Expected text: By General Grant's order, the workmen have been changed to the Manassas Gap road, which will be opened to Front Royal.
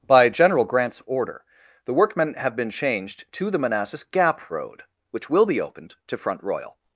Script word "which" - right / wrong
right